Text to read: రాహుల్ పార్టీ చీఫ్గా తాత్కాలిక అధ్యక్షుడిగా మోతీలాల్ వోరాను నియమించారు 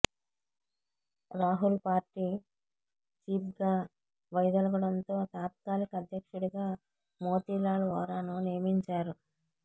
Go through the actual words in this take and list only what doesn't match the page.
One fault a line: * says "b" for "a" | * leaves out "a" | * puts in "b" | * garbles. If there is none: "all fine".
* puts in "వైదొలగడంతో"